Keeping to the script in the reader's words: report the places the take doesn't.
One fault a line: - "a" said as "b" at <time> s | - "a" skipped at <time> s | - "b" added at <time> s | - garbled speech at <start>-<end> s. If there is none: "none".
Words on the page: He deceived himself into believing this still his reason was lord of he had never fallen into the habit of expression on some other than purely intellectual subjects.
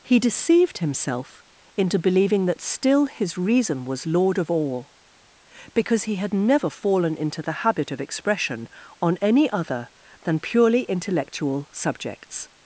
- "this" said as "that" at 2.5 s
- "all because" added at 4.5 s
- "some" said as "any" at 9.2 s